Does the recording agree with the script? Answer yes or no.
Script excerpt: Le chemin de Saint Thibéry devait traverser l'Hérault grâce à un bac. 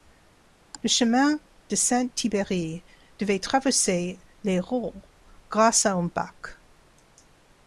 yes